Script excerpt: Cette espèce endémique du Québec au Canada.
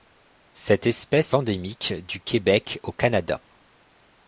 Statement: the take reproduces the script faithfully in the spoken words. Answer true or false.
true